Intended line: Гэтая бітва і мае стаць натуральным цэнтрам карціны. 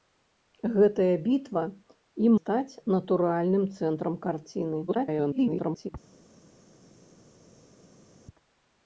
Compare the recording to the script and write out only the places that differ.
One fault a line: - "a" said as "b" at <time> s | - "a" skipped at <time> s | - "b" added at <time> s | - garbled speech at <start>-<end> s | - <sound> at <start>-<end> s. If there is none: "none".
- "мае" skipped at 2.3 s
- garbled speech at 4.9-5.9 s